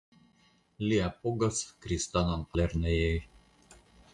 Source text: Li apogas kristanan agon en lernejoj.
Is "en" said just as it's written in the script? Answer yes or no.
no